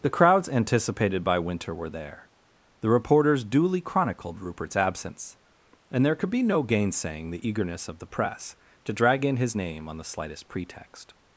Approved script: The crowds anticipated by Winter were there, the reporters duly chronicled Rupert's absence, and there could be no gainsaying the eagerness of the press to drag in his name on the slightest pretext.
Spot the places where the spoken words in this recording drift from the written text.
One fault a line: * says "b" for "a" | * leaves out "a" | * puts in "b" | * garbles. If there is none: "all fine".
all fine